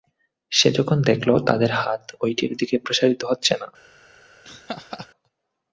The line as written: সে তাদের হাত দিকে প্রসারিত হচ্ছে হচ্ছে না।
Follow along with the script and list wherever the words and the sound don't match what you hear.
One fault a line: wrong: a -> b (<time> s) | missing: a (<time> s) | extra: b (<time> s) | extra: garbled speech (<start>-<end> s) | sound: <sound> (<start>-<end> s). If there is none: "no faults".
extra: যখন দেখল (0.7 s)
extra: ঐটির (2.2 s)
missing: হচ্ছে (3.5 s)
sound: laugh (4.4-5.1 s)